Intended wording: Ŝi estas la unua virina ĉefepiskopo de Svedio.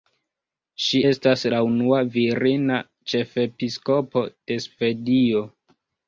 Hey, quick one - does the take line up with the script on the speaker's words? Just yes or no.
yes